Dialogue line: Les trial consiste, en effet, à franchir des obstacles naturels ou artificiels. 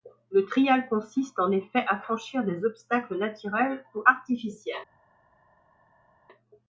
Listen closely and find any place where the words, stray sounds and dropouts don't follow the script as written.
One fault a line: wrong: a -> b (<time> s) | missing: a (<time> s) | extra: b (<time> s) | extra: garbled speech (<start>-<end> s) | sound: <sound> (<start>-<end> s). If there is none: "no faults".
wrong: Les -> Le (0.3 s)